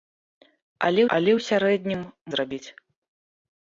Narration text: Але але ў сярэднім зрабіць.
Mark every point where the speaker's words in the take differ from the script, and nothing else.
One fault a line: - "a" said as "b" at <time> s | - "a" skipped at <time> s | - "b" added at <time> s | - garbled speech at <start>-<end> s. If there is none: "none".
none